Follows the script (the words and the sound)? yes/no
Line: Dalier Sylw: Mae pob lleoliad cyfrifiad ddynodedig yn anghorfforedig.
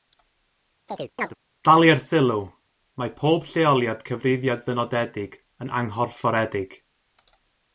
no